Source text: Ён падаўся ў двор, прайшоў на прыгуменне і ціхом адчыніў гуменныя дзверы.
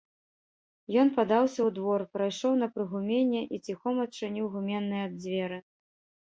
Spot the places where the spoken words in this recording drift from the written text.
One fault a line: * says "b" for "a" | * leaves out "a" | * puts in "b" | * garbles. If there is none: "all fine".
all fine